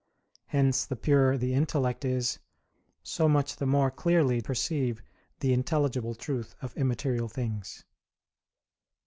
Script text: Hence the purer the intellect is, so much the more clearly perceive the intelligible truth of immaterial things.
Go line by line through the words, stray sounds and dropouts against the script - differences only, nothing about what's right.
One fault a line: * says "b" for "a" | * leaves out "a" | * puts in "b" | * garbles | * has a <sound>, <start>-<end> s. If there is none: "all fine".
all fine